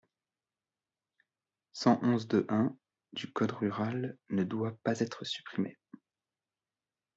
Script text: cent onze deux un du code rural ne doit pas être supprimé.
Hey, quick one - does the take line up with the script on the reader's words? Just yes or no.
yes